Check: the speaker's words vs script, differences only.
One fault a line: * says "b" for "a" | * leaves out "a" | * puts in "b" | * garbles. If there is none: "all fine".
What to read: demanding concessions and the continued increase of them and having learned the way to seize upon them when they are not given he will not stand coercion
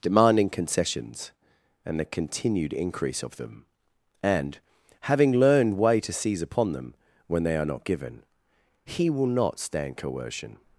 * leaves out "the"